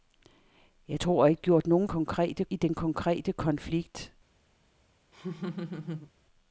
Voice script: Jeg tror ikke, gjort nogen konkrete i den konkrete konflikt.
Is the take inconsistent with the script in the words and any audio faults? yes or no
yes